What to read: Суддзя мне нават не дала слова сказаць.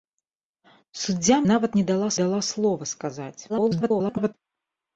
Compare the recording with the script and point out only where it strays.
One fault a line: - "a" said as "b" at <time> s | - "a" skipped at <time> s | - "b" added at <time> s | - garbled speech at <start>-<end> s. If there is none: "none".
- "мне" skipped at 1.4 s
- "дала" added at 2.2 s
- garbled speech at 3.5-4.3 s